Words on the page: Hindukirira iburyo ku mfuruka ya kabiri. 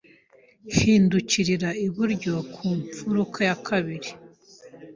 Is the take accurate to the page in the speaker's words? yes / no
yes